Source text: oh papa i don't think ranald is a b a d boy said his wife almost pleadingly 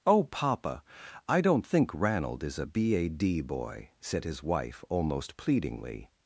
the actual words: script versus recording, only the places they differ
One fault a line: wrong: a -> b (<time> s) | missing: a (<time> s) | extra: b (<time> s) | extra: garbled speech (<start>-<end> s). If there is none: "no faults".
no faults